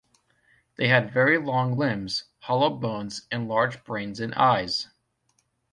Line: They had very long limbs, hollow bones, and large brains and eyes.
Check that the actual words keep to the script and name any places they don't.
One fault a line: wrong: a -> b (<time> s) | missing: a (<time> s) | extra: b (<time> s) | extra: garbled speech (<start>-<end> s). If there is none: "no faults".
no faults